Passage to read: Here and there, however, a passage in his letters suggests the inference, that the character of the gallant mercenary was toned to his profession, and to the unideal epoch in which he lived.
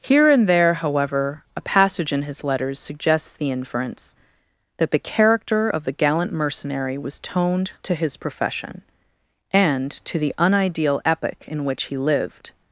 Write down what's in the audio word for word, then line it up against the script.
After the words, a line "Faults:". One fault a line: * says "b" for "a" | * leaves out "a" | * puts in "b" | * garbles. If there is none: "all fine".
Here and there, however, a passage in his letters suggests the inference, that the character of the gallant mercenary was toned to his profession, and to the unideal epoch in which he lived.
Faults:
all fine